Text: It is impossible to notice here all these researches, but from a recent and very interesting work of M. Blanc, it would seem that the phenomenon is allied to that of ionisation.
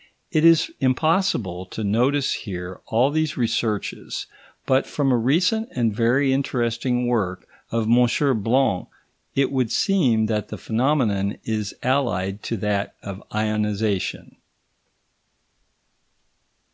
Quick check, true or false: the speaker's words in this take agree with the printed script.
true